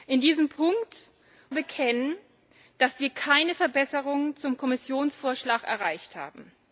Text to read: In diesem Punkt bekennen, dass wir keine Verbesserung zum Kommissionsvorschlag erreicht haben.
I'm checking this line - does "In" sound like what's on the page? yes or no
yes